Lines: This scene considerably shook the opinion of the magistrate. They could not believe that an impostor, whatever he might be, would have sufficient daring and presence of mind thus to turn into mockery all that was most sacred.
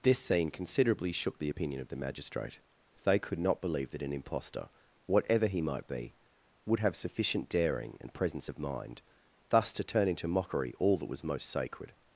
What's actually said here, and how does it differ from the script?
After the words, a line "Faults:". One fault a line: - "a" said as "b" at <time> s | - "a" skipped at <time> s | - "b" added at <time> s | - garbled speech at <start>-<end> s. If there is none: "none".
This scene considerably shook the opinion of the magistrate. They could not believe that an impostor, whatever he might be, would have sufficient daring and presence of mind thus to turn into mockery all that was most sacred.
Faults:
none